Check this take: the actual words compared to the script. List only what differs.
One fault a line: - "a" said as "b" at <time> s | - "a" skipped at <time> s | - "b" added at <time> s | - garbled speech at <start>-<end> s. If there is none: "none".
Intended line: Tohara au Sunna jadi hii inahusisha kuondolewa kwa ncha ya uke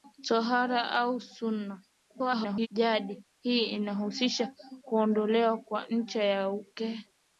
- garbled speech at 2.1-2.7 s